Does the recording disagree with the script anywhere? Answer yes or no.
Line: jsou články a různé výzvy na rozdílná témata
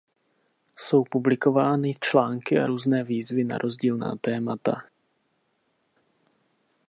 yes